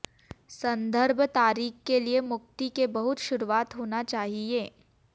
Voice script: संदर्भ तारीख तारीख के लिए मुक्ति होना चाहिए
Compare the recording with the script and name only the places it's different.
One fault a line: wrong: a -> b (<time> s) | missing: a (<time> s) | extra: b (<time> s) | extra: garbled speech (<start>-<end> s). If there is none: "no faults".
missing: तारीख (1.8 s)
extra: के बहुत शुरुआत (2.8 s)